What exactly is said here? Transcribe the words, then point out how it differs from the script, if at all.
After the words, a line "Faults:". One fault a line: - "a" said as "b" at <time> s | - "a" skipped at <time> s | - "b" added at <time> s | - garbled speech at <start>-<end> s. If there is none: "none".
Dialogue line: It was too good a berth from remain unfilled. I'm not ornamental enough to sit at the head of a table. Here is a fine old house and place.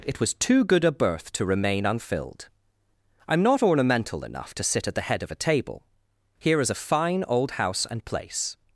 It was too good a berth to remain unfilled. I'm not ornamental enough to sit at the head of a table. Here is a fine old house and place.
Faults:
- "from" said as "to" at 1.3 s